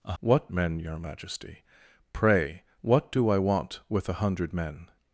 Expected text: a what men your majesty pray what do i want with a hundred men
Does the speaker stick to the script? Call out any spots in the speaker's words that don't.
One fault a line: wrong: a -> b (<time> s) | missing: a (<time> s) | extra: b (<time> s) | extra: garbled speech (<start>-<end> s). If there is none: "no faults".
no faults